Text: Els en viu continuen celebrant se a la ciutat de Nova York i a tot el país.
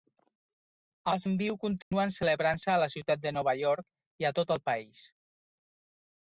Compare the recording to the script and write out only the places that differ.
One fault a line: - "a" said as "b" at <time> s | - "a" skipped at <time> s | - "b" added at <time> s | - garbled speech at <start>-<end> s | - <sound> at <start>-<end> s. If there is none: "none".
- dropout at 1.8-1.9 s